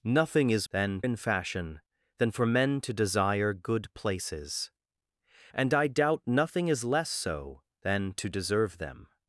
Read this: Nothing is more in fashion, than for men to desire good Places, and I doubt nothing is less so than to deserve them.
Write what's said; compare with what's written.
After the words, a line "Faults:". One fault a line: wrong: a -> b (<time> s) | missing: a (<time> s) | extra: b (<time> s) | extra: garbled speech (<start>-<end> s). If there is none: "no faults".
Nothing is than in fashion, than for men to desire good Places, and I doubt nothing is less so than to deserve them.
Faults:
wrong: more -> than (0.7 s)